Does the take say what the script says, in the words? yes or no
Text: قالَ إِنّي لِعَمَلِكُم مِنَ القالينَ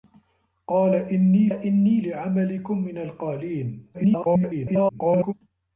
no